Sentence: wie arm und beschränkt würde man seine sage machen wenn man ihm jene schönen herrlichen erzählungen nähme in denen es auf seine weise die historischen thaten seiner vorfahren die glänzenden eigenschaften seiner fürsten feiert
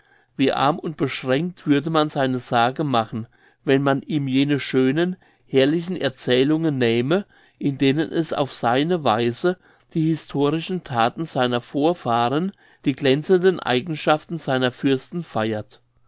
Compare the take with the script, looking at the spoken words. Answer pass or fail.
pass